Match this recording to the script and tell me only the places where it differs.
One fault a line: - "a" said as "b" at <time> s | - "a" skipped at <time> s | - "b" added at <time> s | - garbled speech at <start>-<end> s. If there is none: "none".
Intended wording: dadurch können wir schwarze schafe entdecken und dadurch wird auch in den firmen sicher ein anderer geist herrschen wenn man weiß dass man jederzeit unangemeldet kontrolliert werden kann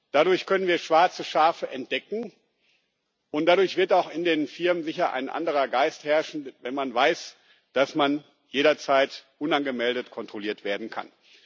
none